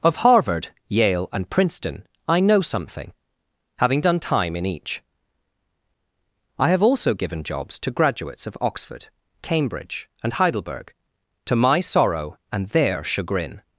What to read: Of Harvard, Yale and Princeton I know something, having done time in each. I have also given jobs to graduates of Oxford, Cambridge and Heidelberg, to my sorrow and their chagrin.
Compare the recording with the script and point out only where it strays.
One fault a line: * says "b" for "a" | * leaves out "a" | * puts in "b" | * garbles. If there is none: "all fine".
all fine